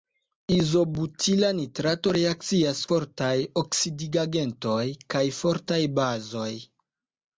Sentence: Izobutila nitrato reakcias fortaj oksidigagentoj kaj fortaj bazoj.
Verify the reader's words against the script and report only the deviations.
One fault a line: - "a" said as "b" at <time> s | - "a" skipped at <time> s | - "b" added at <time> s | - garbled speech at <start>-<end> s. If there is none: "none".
none